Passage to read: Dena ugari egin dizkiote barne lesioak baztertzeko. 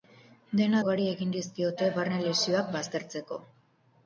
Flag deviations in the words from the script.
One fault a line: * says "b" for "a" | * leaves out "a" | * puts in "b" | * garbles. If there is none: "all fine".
all fine